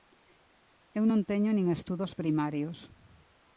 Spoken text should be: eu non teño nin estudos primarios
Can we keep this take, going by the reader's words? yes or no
yes